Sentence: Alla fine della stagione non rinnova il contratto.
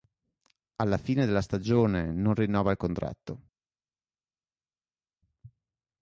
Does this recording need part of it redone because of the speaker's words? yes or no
no